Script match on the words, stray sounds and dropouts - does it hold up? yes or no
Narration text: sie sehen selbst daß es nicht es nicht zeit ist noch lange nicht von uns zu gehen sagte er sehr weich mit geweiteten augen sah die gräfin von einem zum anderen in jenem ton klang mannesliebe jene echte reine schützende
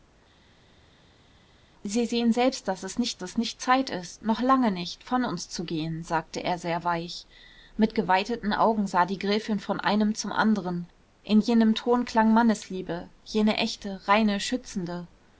yes